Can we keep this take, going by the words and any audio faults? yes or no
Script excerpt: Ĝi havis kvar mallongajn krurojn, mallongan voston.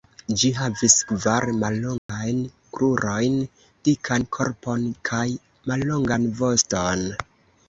no